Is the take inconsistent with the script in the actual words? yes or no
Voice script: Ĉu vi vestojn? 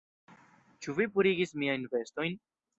yes